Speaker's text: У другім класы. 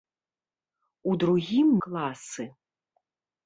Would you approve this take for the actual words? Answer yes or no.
yes